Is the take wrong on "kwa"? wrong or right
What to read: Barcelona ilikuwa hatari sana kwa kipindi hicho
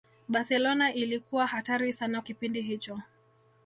wrong